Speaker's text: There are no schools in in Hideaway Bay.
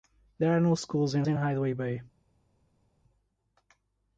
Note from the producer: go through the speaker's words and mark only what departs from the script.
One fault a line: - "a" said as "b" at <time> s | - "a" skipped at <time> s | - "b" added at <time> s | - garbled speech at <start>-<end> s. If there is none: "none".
none